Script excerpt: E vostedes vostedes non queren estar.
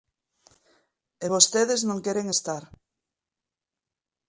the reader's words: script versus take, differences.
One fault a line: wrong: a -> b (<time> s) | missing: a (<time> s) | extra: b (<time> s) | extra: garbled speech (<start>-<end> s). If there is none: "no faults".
missing: vostedes (1.8 s)